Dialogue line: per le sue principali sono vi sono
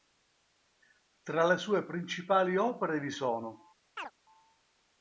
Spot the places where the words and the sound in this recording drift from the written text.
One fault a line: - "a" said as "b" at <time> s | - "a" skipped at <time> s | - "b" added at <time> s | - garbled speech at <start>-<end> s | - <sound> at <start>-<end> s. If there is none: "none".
- "per" said as "tra" at 1.2 s
- "sono" said as "opere" at 2.6 s
- chirp at 4.0-4.1 s